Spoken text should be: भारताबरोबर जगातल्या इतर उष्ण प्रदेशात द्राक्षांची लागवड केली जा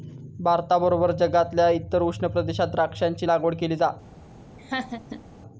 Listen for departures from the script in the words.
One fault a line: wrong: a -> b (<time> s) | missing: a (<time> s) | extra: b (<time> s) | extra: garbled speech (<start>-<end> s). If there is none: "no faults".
no faults